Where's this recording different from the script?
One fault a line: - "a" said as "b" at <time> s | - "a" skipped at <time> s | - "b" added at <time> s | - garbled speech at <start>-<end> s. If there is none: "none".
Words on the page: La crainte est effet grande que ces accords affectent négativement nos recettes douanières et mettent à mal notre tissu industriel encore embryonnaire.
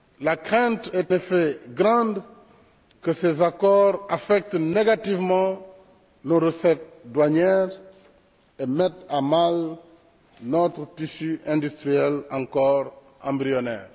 none